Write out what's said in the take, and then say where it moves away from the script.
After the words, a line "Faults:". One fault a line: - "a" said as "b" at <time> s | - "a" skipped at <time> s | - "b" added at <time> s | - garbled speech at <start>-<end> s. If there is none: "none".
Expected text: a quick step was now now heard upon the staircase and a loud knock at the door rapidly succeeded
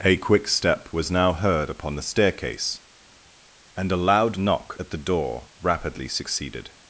a quick step was now heard upon the staircase and a loud knock at the door rapidly succeeded
Faults:
- "now" skipped at 1.3 s